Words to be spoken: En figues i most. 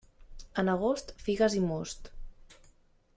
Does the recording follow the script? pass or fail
fail